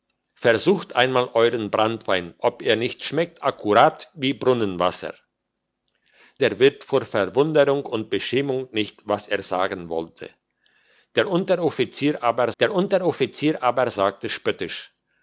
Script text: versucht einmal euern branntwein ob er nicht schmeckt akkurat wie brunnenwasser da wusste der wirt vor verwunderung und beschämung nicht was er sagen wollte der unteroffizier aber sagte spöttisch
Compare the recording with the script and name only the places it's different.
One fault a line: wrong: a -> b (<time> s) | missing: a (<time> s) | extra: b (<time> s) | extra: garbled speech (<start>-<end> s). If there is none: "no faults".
missing: da wusste (5.1 s)
extra: der unteroffizier aber (12.6 s)